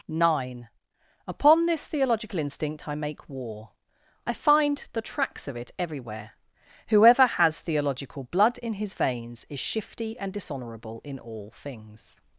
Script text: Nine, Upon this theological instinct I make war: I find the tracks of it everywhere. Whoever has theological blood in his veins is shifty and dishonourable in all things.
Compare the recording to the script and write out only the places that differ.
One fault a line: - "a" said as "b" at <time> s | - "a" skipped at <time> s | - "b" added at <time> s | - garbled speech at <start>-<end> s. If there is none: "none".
none